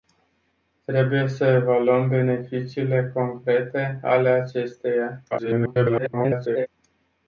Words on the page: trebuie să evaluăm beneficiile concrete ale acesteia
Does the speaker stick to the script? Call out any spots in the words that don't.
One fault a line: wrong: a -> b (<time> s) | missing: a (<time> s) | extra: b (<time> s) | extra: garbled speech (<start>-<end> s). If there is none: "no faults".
extra: garbled speech (5.3-6.7 s)